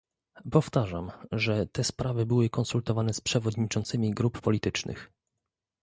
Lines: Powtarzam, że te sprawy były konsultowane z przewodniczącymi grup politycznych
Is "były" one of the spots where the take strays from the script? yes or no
no